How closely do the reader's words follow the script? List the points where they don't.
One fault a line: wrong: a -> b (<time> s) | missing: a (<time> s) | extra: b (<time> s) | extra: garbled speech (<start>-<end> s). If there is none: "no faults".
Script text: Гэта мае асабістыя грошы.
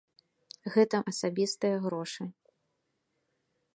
missing: мае (1.0 s)